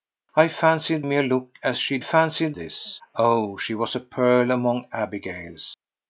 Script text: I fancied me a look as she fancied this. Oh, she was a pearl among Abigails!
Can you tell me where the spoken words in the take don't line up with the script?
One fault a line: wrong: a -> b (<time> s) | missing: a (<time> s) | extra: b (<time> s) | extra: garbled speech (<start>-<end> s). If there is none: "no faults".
no faults